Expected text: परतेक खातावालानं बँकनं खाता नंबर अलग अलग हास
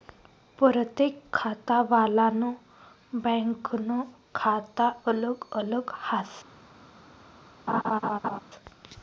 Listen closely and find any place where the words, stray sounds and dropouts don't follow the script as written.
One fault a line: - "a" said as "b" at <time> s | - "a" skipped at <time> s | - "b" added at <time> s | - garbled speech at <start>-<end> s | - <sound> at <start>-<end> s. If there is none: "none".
- "नंबर" skipped at 4.9 s
- laugh at 7.7-8.4 s